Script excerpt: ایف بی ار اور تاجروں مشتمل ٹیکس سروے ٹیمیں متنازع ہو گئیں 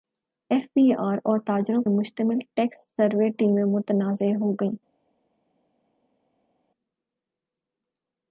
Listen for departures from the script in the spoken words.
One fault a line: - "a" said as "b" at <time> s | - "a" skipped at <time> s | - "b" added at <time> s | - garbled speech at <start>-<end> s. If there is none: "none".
none